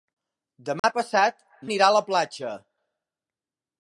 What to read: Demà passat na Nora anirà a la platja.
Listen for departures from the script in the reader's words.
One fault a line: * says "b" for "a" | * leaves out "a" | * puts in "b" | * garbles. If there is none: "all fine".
* leaves out "na Nora"